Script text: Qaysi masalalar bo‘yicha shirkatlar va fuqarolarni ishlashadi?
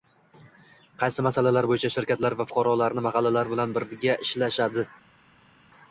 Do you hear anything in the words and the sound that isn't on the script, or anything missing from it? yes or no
yes